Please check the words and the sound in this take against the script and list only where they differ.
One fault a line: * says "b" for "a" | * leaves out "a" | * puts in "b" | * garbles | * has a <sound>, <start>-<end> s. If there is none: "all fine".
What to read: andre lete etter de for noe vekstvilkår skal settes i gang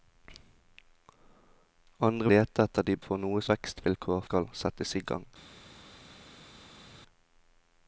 all fine